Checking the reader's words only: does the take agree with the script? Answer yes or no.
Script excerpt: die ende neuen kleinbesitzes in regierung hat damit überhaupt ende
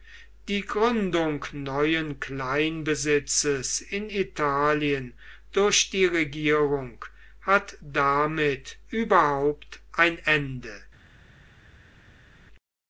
no